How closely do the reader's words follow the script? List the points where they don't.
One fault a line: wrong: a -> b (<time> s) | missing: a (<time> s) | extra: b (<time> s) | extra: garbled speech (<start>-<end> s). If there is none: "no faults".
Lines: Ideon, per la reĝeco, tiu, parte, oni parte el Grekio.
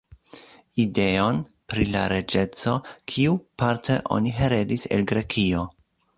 wrong: per -> pri (1.7 s)
wrong: tiu -> kiu (3.2 s)
wrong: parte -> heredis (4.4 s)